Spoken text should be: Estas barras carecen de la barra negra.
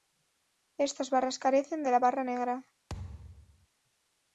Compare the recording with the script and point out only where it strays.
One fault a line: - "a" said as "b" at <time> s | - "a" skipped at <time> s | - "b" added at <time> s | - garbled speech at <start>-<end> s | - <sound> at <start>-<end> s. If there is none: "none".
- thud at 2.9-3.7 s